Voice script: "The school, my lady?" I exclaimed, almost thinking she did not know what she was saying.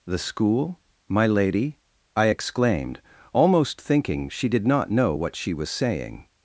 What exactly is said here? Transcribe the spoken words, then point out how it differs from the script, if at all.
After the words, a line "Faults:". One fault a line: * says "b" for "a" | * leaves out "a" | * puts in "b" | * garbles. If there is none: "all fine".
"The school, my lady?" I exclaimed, almost thinking she did not know what she was saying.
Faults:
all fine